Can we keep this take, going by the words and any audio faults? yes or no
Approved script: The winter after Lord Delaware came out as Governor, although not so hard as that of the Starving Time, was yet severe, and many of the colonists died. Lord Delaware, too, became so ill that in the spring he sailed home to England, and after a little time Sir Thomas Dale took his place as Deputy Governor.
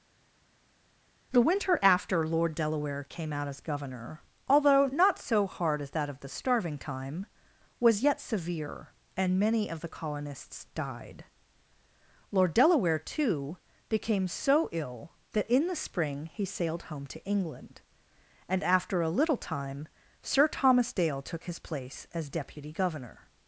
yes